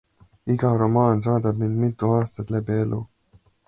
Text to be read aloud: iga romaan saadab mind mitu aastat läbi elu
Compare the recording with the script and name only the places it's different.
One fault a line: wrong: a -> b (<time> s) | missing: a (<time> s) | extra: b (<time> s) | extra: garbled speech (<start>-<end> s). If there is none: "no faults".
no faults